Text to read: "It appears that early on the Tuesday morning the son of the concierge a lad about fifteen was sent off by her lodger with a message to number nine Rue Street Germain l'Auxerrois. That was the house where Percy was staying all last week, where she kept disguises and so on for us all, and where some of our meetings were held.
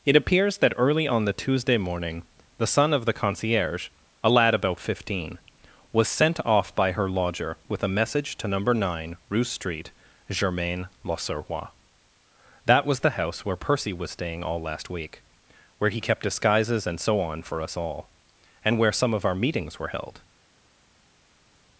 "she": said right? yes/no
no